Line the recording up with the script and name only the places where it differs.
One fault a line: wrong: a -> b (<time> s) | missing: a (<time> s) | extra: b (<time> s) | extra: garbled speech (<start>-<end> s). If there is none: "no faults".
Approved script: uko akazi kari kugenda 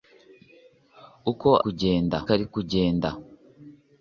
wrong: akazi -> kugenda (1.6 s)